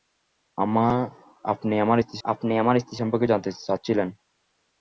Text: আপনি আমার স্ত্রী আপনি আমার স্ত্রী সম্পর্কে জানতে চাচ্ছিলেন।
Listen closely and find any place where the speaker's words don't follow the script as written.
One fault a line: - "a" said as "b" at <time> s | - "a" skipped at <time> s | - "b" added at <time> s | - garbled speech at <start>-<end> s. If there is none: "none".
none